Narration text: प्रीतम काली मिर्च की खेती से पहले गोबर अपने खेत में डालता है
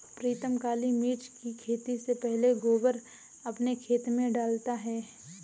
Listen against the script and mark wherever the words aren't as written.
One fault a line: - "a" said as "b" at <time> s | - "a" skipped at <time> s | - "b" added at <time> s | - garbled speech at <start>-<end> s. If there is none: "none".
none